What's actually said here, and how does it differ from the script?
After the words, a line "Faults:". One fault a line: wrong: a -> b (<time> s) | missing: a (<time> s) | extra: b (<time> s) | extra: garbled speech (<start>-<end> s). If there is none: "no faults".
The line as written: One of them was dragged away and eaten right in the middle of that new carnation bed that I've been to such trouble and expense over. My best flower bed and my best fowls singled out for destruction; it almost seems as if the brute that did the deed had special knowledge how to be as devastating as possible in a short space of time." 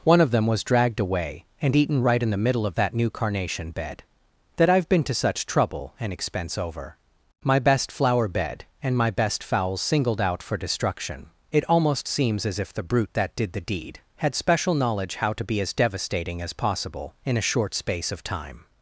One of them was dragged away and eaten right in the middle of that new carnation bed that I've been to such trouble and expense over. My best flower bed and my best fowls singled out for destruction; it almost seems as if the brute that did the deed had special knowledge how to be as devastating as possible in a short space of time."
Faults:
no faults